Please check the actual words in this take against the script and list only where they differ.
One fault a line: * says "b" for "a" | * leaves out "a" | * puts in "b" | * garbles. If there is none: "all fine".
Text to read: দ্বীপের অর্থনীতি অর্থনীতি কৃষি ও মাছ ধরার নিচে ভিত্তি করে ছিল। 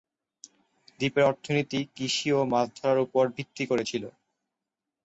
* leaves out "অর্থনীতি"
* says "উপর" for "নিচে"